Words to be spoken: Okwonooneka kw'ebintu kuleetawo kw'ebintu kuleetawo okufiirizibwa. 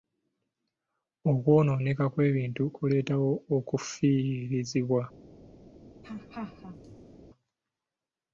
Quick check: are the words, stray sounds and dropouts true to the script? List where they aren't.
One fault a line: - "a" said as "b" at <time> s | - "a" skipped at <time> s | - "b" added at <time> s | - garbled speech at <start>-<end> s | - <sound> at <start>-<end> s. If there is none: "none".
- "kw'ebintu kuleetawo" skipped at 3.3 s
- laugh at 6.0-7.2 s